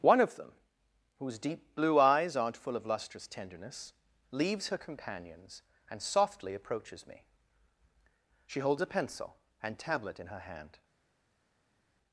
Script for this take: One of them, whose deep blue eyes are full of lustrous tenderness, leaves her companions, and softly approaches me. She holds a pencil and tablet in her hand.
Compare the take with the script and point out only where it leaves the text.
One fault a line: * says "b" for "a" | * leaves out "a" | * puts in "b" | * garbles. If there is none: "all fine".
* says "aren't" for "are"